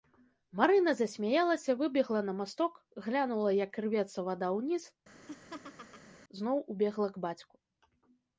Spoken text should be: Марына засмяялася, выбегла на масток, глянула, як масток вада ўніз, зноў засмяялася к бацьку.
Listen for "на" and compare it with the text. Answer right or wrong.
right